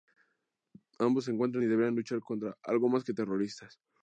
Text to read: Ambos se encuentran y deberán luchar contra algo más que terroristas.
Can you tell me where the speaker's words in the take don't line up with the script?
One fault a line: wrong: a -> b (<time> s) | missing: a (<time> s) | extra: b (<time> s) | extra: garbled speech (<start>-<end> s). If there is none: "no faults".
no faults